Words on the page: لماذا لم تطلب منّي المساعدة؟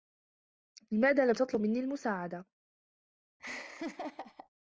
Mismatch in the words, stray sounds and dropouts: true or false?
true